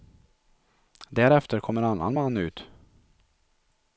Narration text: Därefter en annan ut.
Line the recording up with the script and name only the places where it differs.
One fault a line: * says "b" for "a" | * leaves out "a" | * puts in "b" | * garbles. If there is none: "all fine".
* puts in "kom"
* puts in "man"